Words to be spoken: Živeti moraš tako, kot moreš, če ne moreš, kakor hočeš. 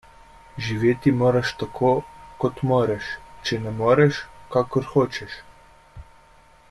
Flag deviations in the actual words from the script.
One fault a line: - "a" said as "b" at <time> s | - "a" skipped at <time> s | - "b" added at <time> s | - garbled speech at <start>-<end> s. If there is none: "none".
none